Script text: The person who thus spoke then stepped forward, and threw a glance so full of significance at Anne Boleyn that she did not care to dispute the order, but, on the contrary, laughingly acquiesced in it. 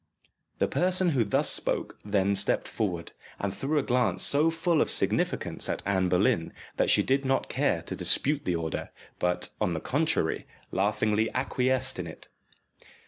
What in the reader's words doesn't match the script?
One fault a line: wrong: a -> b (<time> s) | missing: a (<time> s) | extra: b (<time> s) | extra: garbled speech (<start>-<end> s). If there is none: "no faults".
no faults